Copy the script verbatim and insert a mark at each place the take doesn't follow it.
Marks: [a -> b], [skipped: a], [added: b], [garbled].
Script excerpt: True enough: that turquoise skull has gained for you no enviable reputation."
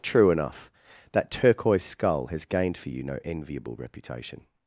True enough: that turquoise skull has gained for you no enviable reputation."